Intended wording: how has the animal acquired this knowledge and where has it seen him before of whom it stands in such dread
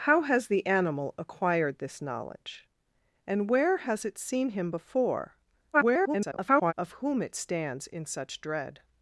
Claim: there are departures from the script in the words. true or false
true